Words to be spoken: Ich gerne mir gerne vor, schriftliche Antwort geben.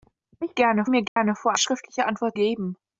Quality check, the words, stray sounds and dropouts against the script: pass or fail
fail